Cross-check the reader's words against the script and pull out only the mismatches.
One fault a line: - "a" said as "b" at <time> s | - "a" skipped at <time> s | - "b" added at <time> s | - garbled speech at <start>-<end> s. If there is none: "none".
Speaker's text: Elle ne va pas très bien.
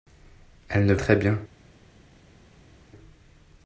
- "va pas" skipped at 0.9 s